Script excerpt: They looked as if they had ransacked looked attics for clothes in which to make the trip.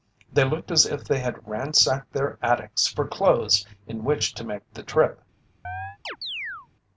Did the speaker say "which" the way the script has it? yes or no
yes